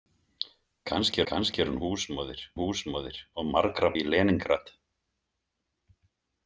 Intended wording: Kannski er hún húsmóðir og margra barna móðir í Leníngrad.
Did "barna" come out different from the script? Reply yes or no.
yes